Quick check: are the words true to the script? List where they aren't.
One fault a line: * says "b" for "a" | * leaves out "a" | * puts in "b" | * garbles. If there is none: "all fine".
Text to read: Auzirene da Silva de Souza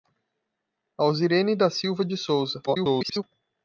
* garbles